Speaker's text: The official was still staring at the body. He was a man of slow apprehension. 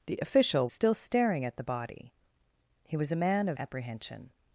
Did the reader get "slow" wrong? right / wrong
wrong